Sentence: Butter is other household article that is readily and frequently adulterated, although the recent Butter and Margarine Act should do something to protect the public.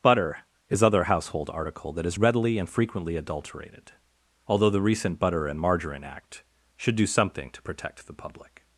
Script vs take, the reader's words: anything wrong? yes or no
no